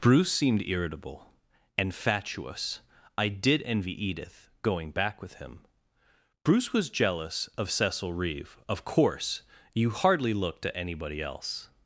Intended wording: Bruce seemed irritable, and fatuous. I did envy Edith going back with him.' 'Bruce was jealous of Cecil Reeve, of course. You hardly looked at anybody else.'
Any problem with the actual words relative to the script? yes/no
no